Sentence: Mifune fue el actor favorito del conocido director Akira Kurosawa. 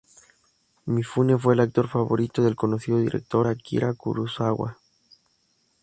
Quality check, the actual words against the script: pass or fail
pass